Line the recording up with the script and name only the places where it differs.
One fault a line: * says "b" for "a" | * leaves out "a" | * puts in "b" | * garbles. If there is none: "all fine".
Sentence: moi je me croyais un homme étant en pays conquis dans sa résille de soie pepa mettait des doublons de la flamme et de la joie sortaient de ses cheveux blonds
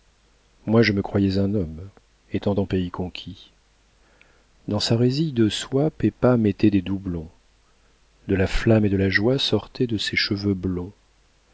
all fine